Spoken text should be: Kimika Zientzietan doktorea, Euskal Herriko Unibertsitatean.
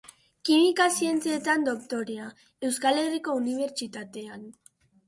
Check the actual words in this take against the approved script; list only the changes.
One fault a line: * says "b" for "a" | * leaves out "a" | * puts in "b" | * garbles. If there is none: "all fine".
all fine